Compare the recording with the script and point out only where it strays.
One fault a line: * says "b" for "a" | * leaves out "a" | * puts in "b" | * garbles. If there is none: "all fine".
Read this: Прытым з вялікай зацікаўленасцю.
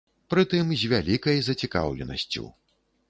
all fine